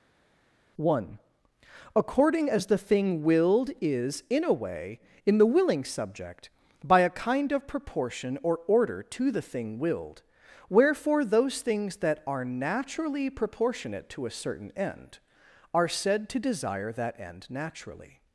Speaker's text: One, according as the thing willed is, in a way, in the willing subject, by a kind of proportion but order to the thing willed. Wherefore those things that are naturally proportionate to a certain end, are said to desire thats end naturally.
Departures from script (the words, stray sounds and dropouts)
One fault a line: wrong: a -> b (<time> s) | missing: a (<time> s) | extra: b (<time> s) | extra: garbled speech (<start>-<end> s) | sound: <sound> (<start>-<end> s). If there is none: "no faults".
wrong: but -> or (8.4 s)
wrong: thats -> that (16.9 s)